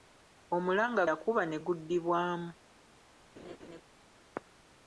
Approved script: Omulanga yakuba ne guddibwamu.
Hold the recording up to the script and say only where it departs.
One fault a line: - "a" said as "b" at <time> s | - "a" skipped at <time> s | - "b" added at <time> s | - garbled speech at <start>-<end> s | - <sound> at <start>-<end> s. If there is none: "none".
- laugh at 3.4-3.8 s